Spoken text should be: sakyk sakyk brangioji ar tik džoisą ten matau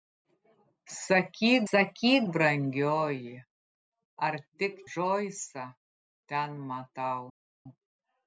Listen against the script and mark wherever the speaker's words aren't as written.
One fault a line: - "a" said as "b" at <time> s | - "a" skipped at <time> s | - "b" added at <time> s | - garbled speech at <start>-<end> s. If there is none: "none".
none